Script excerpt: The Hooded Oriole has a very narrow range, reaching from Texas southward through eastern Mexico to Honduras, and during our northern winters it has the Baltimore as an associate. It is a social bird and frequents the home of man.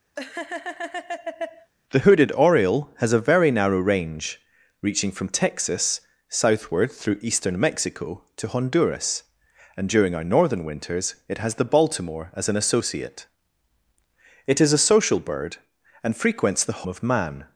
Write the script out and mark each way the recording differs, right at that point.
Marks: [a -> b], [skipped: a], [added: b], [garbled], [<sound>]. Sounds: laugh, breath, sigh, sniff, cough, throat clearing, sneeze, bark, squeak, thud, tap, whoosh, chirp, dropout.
[laugh] The Hooded Oriole has a very narrow range, reaching from Texas southward through eastern Mexico to Honduras, and during our northern winters it has the Baltimore as an associate. It is a social bird and frequents the [skipped: home] of man.